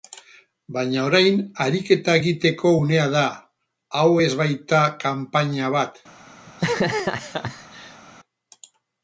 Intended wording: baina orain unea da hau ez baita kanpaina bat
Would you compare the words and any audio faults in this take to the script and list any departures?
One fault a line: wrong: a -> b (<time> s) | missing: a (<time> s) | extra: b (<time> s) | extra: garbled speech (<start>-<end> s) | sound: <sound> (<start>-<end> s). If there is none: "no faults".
extra: ariketa egiteko (1.6 s)
sound: laugh (6.5-8.0 s)